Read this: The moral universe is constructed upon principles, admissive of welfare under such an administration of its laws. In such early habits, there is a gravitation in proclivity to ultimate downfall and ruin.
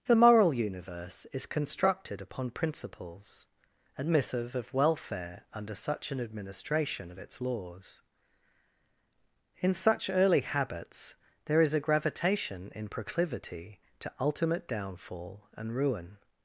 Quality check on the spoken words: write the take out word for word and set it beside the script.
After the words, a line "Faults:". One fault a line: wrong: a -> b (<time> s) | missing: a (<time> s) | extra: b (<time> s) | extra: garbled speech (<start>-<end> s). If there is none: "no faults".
The moral universe is constructed upon principles, admissive of welfare under such an administration of its laws. In such early habits, there is a gravitation in proclivity to ultimate downfall and ruin.
Faults:
no faults